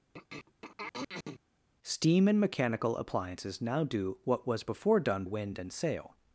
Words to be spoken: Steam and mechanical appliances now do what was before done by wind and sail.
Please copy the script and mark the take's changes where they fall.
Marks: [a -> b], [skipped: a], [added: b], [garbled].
Steam and mechanical appliances now do what was before done [skipped: by] wind and sail.